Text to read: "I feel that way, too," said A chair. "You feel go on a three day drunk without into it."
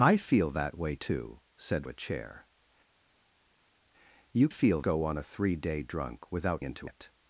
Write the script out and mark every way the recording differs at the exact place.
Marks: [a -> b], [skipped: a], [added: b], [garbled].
"I feel that way, too," said A chair. "You feel go on a three day drunk without into it."